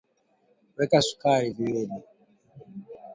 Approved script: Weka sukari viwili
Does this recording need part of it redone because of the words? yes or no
no